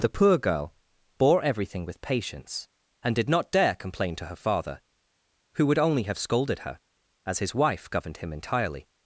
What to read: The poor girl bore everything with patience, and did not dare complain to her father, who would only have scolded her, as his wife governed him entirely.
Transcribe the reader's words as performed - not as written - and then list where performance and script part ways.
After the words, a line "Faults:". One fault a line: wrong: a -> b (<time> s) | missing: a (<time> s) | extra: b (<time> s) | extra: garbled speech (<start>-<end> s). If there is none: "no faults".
The poor girl bore everything with patience, and did not dare complain to her father, who would only have scolded her, as his wife governed him entirely.
Faults:
no faults